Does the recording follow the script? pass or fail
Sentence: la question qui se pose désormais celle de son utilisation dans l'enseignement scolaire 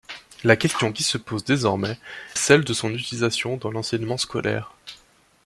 pass